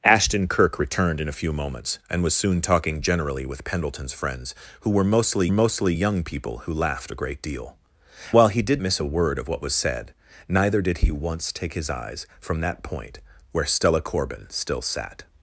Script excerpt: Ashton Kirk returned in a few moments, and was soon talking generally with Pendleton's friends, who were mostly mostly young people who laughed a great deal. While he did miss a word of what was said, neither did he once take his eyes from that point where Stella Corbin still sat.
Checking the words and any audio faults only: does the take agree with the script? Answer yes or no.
yes